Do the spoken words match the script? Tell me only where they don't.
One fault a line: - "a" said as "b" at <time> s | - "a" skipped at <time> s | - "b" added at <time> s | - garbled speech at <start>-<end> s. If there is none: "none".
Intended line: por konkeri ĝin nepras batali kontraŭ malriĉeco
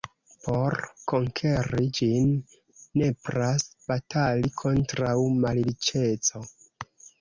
none